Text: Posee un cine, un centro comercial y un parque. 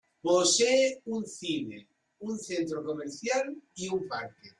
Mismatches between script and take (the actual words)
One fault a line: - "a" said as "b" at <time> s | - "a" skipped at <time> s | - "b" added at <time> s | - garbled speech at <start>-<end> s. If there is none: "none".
none